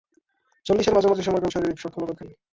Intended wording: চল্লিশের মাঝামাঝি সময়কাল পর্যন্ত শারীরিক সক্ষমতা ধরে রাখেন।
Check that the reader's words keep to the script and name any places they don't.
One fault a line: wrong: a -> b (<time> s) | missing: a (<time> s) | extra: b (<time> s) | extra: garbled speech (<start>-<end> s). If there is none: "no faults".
missing: পর্যন্ত (1.5 s)
missing: ধরে (2.1 s)